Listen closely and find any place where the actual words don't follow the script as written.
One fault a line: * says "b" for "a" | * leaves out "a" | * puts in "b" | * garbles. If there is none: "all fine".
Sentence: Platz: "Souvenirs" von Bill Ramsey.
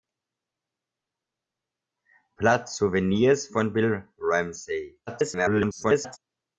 * garbles